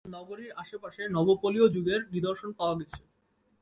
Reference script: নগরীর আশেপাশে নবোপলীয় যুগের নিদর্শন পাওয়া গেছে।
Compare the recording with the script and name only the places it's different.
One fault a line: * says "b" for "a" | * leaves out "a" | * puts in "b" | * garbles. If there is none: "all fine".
all fine